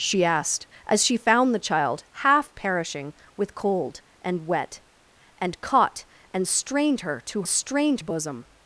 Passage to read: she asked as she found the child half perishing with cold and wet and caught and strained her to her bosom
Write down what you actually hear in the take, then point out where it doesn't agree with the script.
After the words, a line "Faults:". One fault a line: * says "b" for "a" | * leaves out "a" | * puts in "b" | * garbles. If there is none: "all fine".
she asked as she found the child half perishing with cold and wet and caught and strained her to strained bosom
Faults:
* says "strained" for "her"